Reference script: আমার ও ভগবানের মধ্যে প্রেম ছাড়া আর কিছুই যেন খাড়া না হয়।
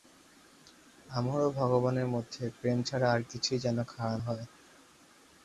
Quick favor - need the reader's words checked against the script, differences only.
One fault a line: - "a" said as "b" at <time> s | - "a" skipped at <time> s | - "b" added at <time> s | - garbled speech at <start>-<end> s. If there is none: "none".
- "না" skipped at 4.2 s